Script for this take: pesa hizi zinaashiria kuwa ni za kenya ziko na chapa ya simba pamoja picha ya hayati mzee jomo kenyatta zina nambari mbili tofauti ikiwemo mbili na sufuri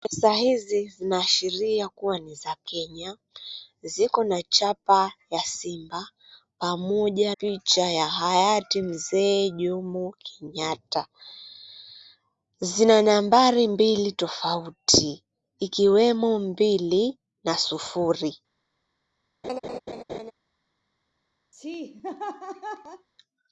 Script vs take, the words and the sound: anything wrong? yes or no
yes